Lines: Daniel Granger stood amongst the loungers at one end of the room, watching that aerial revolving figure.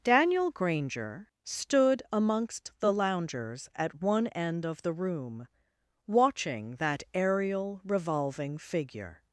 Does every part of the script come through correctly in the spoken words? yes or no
yes